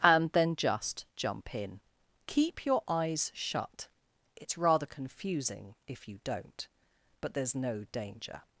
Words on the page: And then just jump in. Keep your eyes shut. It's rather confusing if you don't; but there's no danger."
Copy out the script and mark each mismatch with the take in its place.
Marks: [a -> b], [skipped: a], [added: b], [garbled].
And then just jump in. Keep your eyes shut. It's rather confusing if you don't; but there's no danger."